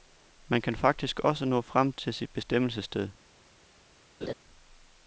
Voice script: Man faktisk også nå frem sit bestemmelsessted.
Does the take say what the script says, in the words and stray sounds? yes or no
no